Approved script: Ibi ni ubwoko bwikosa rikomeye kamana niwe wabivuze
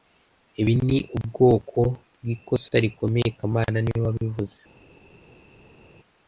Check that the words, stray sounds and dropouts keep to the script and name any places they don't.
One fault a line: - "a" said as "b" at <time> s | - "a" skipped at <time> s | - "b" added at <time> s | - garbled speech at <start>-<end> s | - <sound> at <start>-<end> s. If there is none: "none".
none